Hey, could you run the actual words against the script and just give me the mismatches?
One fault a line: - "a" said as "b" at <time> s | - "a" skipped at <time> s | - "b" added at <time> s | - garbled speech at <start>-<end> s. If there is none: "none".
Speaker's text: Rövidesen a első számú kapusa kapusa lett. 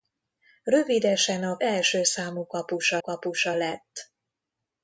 none